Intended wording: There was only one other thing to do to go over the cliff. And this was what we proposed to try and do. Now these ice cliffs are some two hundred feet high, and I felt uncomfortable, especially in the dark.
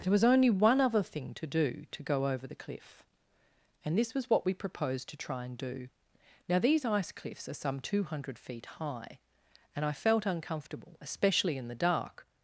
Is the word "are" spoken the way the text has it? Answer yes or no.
yes